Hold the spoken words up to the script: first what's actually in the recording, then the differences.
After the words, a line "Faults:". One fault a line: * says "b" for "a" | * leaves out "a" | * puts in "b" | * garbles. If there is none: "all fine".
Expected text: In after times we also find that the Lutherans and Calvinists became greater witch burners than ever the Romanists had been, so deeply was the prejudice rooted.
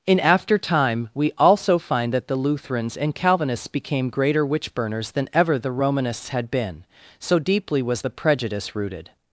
In after time we also find that the Lutherans and Calvinists became greater witch burners than ever the Romanists had been, so deeply was the prejudice rooted.
Faults:
* says "time" for "times"